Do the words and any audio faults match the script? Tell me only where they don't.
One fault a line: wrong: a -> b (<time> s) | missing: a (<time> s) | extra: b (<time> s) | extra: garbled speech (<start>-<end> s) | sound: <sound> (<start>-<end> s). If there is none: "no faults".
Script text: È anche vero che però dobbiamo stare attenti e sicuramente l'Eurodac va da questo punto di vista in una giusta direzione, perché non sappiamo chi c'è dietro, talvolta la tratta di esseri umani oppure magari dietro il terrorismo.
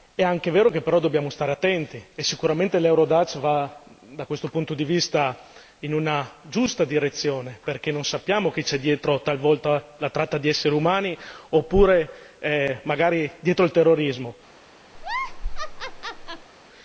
sound: laugh (14.9-16.5 s)